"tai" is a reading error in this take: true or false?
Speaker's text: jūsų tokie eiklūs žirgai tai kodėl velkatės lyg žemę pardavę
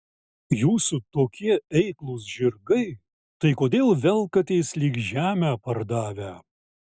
false